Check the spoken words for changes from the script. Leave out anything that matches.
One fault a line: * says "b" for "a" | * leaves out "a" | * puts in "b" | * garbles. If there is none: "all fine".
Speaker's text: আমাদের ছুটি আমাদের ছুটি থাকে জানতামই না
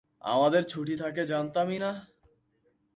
* leaves out "আমাদের ছুটি"